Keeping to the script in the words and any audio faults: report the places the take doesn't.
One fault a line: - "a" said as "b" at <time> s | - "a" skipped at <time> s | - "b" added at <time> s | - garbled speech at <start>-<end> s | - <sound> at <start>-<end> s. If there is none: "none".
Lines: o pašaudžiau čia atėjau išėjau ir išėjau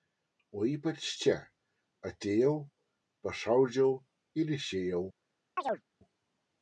- "pašaudžiau" said as "ypač" at 0.7 s
- "išėjau" said as "pašaudžiau" at 3.3 s
- chirp at 5.6-5.8 s